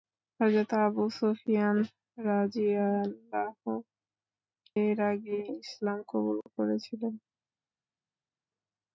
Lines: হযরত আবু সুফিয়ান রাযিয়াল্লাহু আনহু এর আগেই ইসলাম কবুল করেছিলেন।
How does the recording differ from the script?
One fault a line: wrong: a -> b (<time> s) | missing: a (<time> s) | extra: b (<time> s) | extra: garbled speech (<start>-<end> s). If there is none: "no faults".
missing: আনহু (3.7 s)